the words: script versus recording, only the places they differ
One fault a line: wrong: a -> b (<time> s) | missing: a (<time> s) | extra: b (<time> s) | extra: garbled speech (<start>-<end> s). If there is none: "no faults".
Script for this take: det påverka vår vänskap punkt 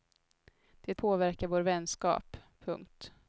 no faults